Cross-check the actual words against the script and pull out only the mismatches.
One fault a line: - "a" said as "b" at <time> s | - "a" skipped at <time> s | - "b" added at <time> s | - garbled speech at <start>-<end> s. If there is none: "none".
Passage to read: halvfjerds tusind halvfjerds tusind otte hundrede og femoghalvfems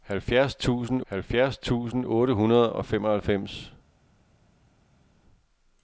none